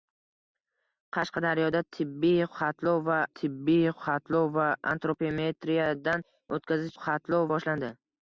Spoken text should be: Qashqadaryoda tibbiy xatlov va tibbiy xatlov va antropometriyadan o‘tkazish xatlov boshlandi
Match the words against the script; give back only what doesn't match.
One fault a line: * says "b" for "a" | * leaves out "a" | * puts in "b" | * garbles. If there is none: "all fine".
all fine